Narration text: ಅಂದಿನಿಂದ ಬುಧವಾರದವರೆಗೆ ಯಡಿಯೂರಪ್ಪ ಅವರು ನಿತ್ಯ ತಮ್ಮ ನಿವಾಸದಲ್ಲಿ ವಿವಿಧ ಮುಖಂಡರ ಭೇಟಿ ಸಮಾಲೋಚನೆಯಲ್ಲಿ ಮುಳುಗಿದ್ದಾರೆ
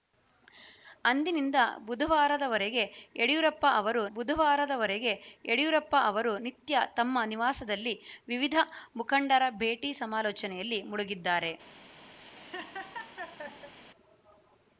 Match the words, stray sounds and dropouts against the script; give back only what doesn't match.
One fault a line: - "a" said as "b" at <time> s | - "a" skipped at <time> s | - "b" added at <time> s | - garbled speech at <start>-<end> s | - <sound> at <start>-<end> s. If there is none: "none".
- "ಬುಧವಾರದವರೆಗೆ ಯಡಿಯೂರಪ್ಪ ಅವರು" added at 4.2 s
- laugh at 12.2-13.7 s